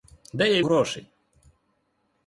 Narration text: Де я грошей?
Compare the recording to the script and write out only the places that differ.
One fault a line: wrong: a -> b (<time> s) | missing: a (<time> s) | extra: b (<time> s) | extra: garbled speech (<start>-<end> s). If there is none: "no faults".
no faults